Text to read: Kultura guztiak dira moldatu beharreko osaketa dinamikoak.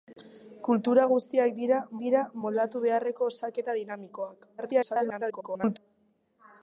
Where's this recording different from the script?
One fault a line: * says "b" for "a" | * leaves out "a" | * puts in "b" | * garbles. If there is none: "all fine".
* puts in "dira"
* garbles